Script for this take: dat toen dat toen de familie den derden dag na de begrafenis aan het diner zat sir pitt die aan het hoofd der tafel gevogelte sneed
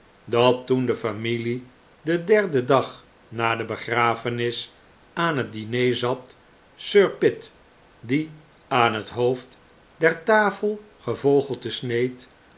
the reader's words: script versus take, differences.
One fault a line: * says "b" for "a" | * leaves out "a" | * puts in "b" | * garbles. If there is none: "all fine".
* leaves out "dat toen"